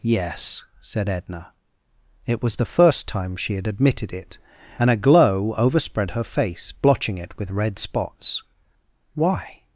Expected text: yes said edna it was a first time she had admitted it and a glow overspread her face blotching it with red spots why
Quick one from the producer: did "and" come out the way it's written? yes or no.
yes